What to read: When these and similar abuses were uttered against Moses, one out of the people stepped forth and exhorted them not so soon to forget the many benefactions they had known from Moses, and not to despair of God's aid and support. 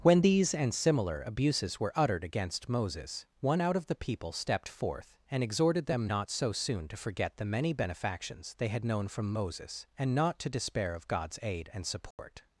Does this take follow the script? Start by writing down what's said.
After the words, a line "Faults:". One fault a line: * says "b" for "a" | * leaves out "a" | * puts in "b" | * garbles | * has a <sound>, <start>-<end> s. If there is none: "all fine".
When these and similar abuses were uttered against Moses, one out of the people stepped forth and exhorted them not so soon to forget the many benefactions they had known from Moses, and not to despair of God's aid and support.
Faults:
* has a dropout, 12.1-12.2 s